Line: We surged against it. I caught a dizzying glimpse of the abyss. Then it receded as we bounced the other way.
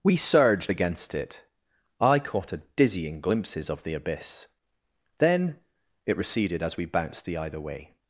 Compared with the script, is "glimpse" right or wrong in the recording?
wrong